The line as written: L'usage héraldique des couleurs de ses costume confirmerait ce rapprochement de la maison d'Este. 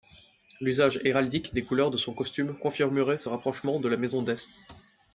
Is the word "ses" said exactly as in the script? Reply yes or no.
no